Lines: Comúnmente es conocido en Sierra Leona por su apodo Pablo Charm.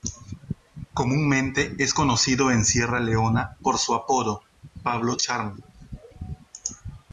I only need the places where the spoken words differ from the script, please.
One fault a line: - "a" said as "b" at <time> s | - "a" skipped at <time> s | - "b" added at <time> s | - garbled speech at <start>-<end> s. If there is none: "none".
none